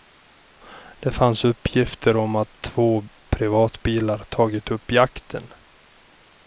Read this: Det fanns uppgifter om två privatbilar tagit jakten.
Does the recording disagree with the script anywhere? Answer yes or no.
yes